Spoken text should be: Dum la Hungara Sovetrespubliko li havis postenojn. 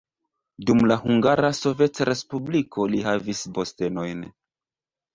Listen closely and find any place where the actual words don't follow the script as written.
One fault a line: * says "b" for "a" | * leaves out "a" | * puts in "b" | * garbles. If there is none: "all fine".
all fine